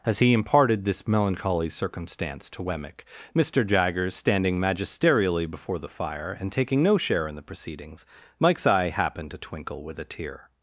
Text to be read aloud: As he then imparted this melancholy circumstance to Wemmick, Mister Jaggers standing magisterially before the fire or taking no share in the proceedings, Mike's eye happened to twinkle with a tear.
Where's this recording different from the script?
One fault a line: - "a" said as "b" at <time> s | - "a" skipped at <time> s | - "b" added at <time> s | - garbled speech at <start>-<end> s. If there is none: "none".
- "then" skipped at 0.3 s
- "or" said as "and" at 6.4 s